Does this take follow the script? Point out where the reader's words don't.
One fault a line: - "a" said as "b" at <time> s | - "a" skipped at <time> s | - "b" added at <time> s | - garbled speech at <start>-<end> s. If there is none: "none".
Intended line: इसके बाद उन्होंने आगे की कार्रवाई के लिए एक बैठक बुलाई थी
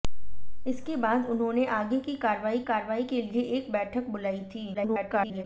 - "कार्रवाई" added at 2.6 s
- garbled speech at 4.7-5.4 s